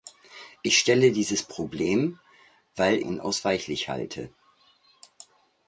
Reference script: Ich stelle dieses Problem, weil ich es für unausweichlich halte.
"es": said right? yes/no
no